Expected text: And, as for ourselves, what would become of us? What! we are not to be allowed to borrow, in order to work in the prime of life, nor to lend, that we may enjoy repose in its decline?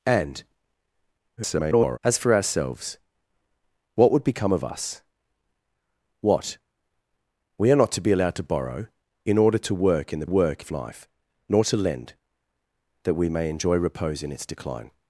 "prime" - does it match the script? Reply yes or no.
no